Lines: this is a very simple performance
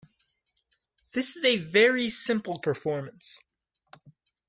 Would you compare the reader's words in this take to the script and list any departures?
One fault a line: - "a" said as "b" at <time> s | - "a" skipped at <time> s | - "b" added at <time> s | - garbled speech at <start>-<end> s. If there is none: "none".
none